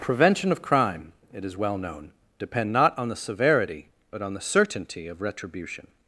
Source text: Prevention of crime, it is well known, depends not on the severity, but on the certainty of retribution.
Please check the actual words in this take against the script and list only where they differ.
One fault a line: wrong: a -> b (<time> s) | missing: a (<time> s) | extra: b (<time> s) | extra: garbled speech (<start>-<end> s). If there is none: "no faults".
wrong: depends -> depend (2.4 s)